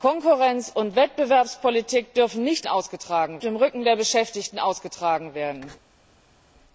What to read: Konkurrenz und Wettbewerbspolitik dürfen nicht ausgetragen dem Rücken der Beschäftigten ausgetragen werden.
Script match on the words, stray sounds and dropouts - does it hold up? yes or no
yes